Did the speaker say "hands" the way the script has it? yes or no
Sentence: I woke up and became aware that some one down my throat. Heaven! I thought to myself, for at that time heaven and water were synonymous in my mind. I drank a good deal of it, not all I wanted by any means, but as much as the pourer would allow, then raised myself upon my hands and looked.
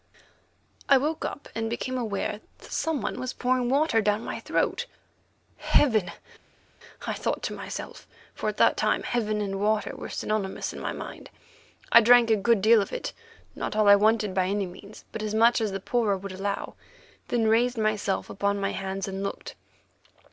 yes